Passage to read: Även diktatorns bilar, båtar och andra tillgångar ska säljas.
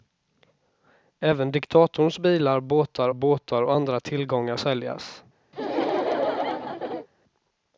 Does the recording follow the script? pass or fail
fail